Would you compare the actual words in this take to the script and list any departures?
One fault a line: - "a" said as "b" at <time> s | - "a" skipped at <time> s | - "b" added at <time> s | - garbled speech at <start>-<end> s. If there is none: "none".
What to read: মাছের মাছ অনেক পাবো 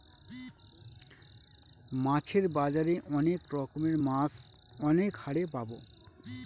- "বাজারে অনেক রকমের" added at 2.6 s
- "হারে" added at 5.2 s